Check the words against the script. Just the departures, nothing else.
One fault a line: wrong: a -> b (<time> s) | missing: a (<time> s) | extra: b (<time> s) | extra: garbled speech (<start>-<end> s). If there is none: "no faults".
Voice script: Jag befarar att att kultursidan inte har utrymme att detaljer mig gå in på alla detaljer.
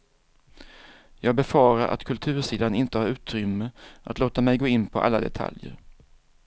missing: att (2.0 s)
wrong: detaljer -> låta (4.2 s)